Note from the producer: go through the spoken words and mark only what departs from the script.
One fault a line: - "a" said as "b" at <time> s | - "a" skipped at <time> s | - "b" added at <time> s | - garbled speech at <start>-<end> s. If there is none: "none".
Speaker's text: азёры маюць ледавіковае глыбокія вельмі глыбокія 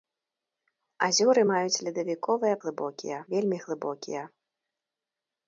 none